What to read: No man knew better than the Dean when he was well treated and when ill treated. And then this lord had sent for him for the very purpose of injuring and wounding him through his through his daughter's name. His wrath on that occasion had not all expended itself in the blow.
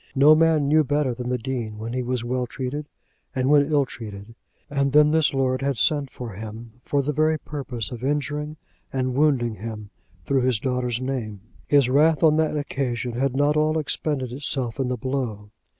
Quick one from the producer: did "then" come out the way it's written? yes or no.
yes